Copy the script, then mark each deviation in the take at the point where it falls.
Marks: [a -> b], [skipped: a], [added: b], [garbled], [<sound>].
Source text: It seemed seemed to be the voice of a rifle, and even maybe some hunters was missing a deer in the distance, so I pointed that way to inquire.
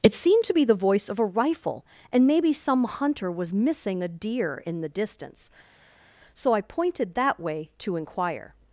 It seemed [skipped: seemed] to be the voice of a rifle, and [skipped: even] maybe some [hunters -> hunter] was missing a deer in the distance, so I pointed that way to inquire.